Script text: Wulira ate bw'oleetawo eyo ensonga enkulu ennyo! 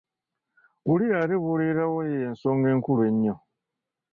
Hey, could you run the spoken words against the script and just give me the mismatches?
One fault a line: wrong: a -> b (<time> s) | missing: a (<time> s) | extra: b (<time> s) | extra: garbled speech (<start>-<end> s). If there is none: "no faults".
no faults